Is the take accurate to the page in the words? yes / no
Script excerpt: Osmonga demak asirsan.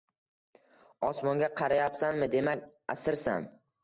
no